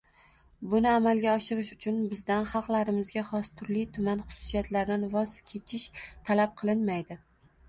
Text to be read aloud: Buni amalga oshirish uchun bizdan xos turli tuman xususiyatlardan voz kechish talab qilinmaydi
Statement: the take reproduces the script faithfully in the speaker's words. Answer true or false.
false